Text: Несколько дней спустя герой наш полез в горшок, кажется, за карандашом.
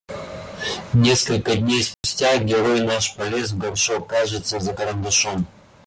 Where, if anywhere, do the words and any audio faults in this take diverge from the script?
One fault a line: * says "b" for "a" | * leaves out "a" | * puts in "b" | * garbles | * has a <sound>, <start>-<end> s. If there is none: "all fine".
* has a dropout, 1.9-2.0 s